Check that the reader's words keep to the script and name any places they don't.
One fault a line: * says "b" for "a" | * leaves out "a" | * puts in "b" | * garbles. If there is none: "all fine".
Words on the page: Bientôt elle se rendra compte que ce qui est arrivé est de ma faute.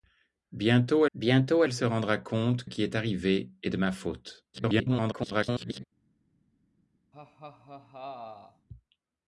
* puts in "bientôt"
* leaves out "que ce"
* garbles